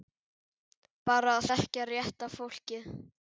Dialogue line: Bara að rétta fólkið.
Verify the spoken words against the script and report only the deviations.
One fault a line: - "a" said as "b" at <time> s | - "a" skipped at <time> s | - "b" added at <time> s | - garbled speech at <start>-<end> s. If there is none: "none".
- "þekkja" added at 1.5 s